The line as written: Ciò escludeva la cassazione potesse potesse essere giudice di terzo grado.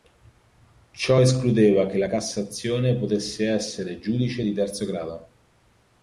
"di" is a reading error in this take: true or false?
false